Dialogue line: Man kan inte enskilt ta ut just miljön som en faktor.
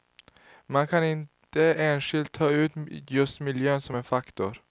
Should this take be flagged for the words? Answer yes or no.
no